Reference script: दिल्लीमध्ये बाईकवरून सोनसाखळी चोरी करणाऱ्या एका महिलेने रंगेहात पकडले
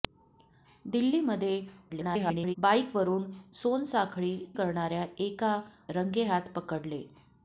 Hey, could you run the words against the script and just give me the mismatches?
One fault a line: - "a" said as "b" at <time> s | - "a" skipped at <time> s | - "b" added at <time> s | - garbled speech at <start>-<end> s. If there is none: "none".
- garbled speech at 1.9-2.6 s
- "चोरी" skipped at 4.3 s
- "महिलेने" skipped at 5.6 s